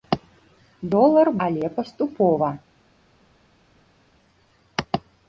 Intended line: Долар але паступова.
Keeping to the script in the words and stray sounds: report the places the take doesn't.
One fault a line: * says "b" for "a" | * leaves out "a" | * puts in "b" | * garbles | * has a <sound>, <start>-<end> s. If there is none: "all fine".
all fine